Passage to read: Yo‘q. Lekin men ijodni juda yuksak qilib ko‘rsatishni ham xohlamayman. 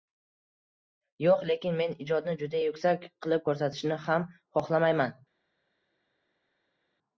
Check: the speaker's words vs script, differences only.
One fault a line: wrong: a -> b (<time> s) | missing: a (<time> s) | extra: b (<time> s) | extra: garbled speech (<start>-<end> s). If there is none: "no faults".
no faults